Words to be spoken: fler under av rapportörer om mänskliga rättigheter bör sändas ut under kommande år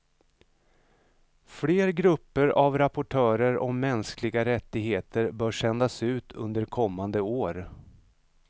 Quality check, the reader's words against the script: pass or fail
fail